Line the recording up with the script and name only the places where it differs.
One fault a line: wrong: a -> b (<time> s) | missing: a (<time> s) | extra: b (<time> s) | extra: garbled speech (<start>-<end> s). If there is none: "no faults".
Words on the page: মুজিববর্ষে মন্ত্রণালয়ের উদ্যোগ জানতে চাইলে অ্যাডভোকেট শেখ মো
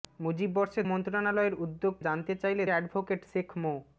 no faults